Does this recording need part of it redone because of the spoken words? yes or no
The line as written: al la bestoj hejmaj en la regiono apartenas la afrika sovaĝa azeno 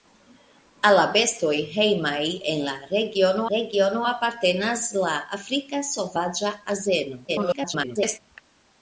yes